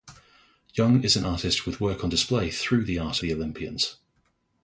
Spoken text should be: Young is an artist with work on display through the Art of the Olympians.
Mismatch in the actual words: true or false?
true